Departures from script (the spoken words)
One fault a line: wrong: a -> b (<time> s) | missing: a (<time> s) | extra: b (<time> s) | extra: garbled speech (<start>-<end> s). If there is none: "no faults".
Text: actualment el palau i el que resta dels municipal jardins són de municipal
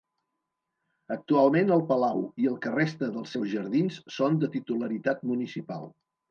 wrong: municipal -> seus (3.3 s)
extra: titularitat (4.6 s)